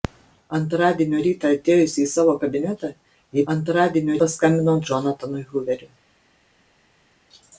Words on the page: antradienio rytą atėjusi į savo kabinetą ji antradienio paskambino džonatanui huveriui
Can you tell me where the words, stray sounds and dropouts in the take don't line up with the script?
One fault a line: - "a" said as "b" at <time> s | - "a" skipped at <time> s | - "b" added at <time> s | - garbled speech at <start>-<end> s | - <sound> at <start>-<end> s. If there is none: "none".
none